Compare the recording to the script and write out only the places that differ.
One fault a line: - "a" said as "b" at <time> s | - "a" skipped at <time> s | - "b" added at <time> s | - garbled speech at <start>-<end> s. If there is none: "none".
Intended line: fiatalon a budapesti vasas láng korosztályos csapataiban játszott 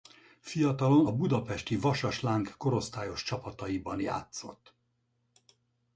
none